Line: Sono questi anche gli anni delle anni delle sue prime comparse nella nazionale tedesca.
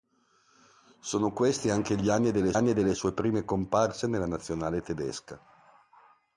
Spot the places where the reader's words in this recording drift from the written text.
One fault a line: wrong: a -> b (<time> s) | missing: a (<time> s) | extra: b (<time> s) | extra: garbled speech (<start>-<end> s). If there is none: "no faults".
no faults